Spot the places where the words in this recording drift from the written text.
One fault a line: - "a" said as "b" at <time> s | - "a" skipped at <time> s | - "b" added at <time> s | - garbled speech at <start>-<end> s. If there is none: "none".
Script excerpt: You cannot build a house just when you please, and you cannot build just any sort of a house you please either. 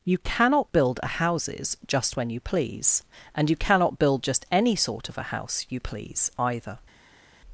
- "house" said as "houses" at 1.1 s